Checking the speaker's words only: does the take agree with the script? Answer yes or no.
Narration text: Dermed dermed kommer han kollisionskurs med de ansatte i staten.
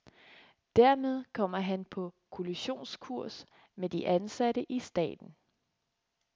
no